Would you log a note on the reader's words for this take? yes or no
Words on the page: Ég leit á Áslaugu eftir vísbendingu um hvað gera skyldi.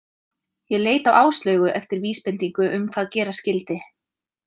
no